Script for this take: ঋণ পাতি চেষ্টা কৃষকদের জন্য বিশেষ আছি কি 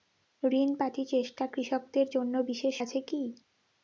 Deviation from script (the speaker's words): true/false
false